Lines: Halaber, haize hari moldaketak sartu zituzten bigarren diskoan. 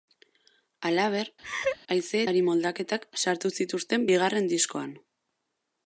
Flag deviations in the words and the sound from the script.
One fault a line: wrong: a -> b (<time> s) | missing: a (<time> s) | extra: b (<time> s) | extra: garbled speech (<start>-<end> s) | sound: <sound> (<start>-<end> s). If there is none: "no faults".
sound: laugh (1.4-1.8 s)